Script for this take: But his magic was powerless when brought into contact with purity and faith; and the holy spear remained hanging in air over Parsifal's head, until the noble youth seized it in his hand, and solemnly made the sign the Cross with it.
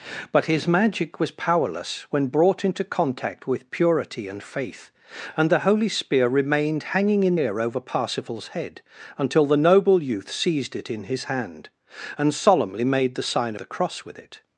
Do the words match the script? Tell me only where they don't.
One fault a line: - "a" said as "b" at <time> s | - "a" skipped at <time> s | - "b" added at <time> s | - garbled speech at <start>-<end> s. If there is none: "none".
none